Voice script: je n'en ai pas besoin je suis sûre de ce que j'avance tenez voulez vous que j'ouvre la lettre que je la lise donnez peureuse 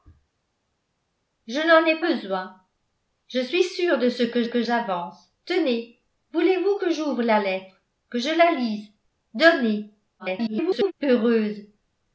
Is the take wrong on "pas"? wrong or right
wrong